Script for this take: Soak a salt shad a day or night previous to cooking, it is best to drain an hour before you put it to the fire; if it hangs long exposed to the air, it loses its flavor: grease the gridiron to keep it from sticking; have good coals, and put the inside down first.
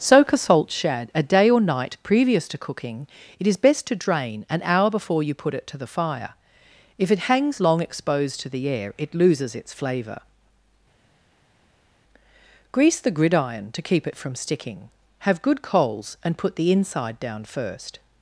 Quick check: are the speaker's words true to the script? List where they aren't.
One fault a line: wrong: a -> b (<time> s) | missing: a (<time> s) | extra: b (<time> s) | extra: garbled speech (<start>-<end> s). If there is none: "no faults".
no faults